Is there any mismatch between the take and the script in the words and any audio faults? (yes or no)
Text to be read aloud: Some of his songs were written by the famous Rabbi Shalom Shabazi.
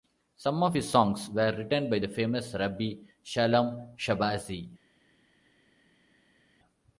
no